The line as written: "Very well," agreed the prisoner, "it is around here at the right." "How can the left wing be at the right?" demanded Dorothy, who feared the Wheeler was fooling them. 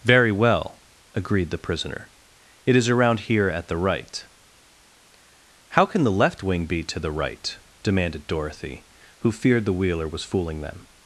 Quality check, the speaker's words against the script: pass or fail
fail